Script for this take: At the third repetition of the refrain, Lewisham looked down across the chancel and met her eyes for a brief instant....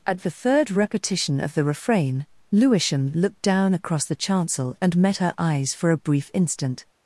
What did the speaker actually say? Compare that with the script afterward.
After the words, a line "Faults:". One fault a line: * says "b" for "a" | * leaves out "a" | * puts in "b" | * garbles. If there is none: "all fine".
At the third repetition of the refrain, Lewisham looked down across the chancel and met her eyes for a brief instant....
Faults:
all fine